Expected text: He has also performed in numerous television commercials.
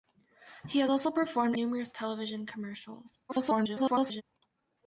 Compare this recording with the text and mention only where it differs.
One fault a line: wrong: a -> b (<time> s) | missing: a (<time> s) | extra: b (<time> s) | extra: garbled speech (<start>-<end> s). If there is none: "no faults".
missing: in (1.6 s)
extra: garbled speech (3.3-4.2 s)